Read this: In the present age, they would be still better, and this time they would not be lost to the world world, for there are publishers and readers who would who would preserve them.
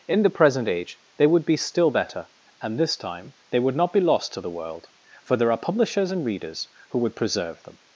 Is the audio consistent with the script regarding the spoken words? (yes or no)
no